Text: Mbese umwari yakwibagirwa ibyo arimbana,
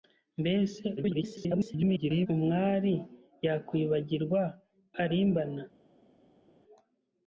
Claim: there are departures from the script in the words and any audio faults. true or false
true